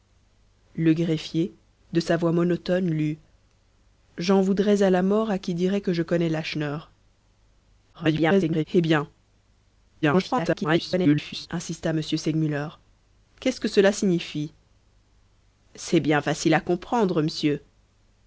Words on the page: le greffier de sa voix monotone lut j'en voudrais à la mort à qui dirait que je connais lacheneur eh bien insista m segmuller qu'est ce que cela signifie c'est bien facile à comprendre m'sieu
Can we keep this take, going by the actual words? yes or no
no